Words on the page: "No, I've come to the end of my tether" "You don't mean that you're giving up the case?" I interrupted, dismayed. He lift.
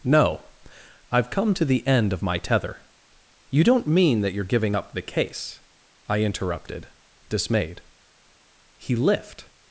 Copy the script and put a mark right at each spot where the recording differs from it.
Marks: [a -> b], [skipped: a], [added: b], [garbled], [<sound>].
"No, I've come to the end of my tether" "You don't mean that you're giving up the case?" I interrupted, dismayed. He lift.